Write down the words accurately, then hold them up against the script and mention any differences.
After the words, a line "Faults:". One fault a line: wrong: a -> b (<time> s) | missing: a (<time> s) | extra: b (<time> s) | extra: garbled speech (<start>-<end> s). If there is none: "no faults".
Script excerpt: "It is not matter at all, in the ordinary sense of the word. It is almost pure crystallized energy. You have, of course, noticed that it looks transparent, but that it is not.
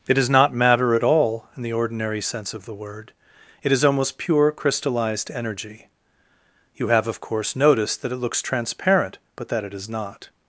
"It is not matter at all, in the ordinary sense of the word. It is almost pure crystallized energy. You have, of course, noticed that it looks transparent, but that it is not.
Faults:
no faults